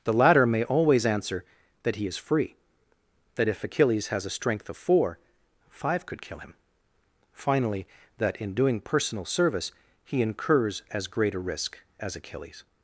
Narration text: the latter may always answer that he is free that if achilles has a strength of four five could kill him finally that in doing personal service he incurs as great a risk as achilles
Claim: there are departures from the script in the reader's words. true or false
false